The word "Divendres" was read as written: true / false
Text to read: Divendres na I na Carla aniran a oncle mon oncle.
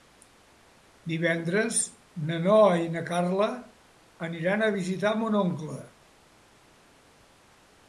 true